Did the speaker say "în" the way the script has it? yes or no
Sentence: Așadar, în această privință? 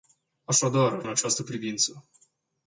yes